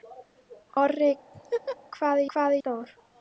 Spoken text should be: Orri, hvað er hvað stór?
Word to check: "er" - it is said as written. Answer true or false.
true